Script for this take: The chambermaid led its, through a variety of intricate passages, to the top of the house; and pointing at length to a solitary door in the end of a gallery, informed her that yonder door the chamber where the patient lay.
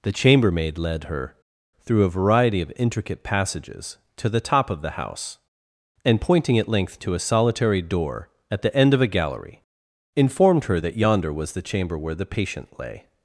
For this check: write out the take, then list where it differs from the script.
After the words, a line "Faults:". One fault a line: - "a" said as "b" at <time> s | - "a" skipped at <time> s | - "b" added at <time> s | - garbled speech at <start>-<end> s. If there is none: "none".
The chambermaid led her, through a variety of intricate passages, to the top of the house; and pointing at length to a solitary door at the end of a gallery, informed her that yonder was the chamber where the patient lay.
Faults:
- "its" said as "her" at 1.0 s
- "in" said as "at" at 8.5 s
- "door" said as "was" at 11.3 s